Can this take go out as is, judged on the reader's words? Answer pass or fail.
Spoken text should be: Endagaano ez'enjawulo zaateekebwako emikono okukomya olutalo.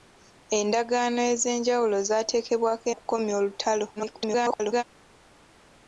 fail